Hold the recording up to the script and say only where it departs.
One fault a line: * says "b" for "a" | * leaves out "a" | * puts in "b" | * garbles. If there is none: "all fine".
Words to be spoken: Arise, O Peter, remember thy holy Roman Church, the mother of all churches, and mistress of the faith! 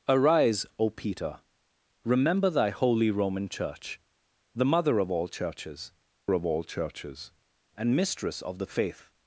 * puts in "of all churches"